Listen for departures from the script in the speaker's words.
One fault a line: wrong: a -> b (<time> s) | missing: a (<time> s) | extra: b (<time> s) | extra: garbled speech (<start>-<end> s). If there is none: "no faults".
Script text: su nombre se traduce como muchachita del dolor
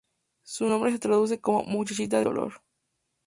missing: del (2.2 s)